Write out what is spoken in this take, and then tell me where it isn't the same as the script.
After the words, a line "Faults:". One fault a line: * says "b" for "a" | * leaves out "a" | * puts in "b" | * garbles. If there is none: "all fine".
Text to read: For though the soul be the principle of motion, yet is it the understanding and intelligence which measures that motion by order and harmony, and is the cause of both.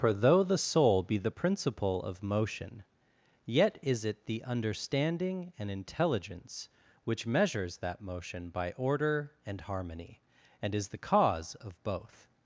For though the soul be the principle of motion, yet is it the understanding and intelligence which measures that motion by order and harmony, and is the cause of both.
Faults:
all fine